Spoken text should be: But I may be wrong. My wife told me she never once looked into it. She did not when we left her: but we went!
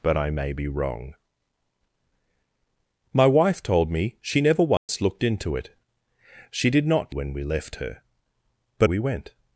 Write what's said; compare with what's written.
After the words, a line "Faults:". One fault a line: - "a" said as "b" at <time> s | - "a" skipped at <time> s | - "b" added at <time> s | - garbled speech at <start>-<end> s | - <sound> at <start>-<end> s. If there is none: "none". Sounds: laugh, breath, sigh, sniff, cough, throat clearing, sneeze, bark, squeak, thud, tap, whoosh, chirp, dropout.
But I may be wrong. My wife told me she never once looked into it. She did not when we left her: but we went!
Faults:
- dropout at 4.8-4.9 s